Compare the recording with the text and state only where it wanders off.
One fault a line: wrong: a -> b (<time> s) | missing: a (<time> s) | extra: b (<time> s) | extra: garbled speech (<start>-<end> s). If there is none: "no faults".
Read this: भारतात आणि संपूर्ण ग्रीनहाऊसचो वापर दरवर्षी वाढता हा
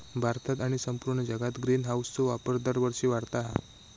extra: जगात (1.2 s)